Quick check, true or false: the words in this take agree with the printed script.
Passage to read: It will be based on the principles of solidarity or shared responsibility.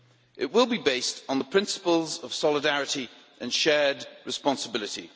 false